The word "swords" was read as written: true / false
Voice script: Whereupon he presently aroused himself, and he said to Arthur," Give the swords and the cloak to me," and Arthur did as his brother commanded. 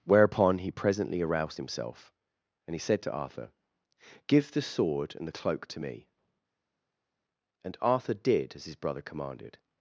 false